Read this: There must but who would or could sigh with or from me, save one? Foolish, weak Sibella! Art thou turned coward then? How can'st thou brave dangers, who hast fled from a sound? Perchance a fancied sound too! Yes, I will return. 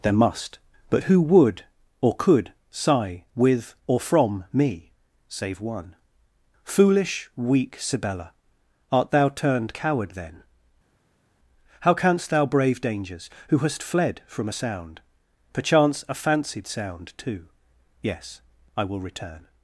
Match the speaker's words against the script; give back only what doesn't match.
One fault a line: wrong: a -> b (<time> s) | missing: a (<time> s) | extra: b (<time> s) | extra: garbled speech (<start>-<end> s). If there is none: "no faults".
no faults